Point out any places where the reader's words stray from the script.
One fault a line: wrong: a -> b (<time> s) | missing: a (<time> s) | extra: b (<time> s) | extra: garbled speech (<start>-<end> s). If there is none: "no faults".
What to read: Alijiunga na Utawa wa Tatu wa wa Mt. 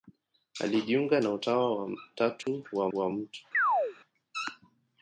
no faults